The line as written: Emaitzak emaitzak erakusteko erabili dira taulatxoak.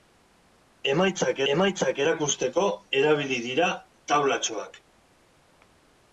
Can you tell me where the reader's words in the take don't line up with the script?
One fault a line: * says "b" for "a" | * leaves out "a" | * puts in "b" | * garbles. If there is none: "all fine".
all fine